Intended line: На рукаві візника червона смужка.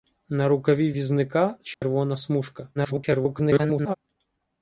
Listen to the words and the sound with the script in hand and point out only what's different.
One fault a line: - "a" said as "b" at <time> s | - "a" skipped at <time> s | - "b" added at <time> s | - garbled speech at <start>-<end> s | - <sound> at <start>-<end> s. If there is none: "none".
- dropout at 1.7-1.8 s
- garbled speech at 2.8-3.9 s